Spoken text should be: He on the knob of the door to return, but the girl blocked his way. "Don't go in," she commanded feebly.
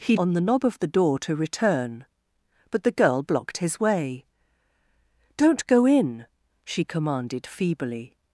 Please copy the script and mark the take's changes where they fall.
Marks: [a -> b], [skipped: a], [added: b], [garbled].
He on the knob of the door to return, but the girl blocked his way. "Don't go in," she commanded feebly.